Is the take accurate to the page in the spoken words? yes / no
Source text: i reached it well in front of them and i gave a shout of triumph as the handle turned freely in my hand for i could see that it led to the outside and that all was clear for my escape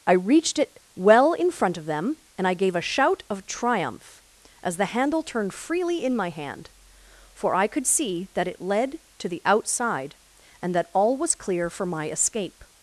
yes